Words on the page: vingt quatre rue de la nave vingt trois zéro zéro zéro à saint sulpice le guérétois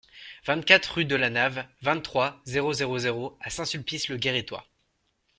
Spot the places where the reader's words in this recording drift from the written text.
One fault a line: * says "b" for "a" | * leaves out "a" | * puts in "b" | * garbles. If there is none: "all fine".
all fine